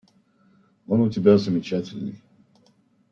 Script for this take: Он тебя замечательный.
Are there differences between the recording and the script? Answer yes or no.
yes